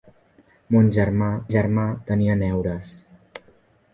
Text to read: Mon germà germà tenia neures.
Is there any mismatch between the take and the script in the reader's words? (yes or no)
no